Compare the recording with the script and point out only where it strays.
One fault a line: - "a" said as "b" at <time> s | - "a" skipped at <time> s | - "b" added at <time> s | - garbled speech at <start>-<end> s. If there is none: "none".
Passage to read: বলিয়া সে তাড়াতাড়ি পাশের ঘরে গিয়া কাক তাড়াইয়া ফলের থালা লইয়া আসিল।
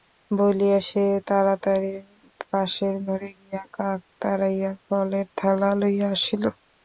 none